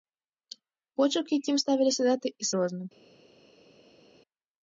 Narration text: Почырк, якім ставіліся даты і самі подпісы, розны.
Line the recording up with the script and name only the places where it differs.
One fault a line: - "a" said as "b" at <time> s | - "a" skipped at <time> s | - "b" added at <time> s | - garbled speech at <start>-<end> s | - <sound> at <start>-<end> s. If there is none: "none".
- "самі подпісы" skipped at 2.5 s